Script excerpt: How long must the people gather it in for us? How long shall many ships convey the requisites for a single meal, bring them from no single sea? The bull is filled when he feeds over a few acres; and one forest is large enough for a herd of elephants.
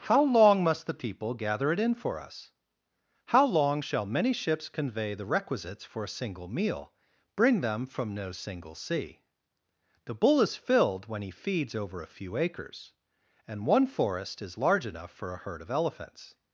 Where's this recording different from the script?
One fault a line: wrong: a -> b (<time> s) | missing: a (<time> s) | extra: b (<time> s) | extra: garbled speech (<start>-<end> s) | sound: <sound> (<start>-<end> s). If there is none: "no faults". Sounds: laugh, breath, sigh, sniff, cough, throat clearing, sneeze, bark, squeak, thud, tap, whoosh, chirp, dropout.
no faults